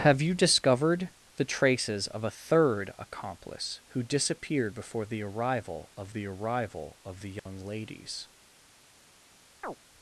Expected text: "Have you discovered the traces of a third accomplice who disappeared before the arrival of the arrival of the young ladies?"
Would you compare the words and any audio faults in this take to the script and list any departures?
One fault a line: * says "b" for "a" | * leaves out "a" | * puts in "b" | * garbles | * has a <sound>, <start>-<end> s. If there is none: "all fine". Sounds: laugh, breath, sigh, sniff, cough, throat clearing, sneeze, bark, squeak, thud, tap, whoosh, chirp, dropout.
* has a dropout, 7.4-7.5 s
* has a chirp, 9.6-9.8 s